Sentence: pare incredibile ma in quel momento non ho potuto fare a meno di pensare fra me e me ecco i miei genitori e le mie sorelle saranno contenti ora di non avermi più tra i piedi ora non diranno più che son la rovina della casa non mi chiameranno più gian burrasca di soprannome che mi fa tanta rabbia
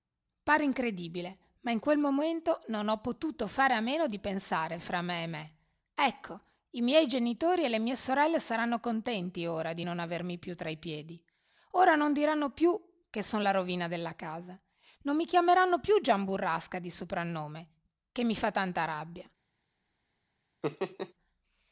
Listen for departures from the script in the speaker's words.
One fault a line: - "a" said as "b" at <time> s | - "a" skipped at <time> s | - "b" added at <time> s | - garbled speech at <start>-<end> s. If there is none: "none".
none